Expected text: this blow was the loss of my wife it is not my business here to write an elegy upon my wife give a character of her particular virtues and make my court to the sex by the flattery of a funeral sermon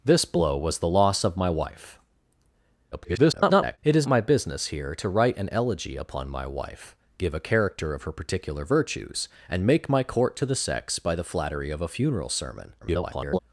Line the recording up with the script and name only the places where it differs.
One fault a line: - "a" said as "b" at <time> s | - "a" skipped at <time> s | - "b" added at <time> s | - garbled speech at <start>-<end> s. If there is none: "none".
- garbled speech at 2.9-3.8 s
- "not" skipped at 4.1 s
- garbled speech at 12.8-13.4 s